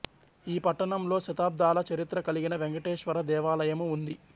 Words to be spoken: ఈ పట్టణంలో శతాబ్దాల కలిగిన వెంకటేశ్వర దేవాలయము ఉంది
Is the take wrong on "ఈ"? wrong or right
right